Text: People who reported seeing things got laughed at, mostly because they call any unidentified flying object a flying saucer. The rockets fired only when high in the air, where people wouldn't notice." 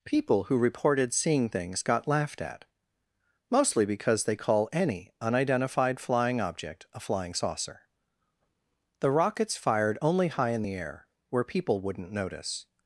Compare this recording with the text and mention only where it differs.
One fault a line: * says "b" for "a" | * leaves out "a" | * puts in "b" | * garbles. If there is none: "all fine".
* leaves out "when"